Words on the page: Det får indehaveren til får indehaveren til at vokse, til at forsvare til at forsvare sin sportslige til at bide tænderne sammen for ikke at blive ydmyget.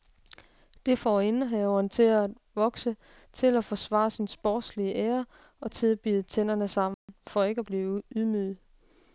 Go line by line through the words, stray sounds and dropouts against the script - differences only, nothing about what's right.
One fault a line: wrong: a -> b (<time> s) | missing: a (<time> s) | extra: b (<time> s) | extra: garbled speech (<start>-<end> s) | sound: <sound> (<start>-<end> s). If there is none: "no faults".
missing: får indehaveren til (2.0 s)
wrong: til at forsvare sin sportslige -> sin sportslige ære og (4.1 s)
sound: dropout (6.9-7.1 s)